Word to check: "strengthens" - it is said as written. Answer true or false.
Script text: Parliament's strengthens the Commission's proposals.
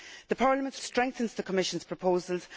true